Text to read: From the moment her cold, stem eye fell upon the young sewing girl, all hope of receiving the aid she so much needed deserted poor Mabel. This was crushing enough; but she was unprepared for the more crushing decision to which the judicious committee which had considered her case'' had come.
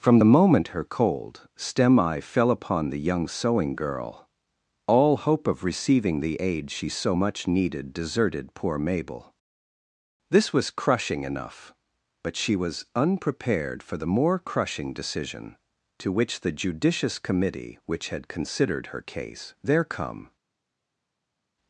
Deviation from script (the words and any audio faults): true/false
true